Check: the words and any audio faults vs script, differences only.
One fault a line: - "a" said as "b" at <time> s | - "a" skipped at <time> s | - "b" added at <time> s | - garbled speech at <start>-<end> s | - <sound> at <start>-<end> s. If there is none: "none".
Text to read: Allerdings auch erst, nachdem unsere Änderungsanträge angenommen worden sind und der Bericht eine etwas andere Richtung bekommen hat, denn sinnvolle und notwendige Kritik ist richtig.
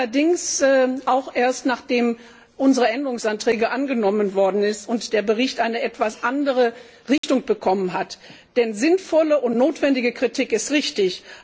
- dropout at 7.2-7.2 s